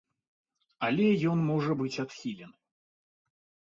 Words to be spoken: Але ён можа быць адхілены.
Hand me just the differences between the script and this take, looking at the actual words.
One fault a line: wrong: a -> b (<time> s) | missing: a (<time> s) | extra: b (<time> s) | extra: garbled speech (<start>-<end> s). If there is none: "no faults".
no faults